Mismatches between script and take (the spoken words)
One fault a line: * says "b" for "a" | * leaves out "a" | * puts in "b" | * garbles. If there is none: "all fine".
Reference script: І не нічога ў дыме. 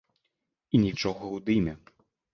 all fine